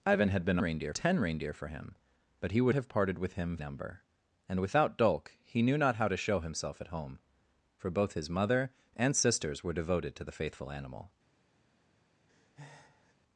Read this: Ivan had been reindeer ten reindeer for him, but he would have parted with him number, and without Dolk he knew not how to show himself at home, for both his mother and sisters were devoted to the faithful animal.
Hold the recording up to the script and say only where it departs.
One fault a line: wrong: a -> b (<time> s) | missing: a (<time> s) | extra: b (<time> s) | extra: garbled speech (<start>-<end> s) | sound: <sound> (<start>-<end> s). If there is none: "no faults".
sound: breath (12.3-13.1 s)